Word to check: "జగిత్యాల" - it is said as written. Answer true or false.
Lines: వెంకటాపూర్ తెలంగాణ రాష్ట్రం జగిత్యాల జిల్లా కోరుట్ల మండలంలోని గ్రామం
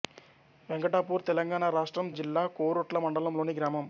false